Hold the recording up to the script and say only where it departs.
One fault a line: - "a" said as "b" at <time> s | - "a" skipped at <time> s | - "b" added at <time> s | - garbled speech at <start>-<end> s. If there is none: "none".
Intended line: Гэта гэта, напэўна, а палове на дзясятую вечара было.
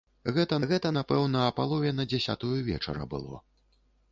none